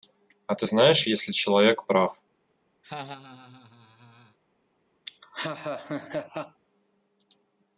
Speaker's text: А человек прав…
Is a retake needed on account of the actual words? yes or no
yes